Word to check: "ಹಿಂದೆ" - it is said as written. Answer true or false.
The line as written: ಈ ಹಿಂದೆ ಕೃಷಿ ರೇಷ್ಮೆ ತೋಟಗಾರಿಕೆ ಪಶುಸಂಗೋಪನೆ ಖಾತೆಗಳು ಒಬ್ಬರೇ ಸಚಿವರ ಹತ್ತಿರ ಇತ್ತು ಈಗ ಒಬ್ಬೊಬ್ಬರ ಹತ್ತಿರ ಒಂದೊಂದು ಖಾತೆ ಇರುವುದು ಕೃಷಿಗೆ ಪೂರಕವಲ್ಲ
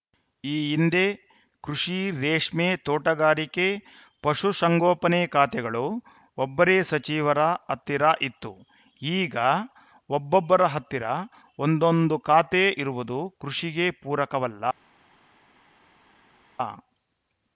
true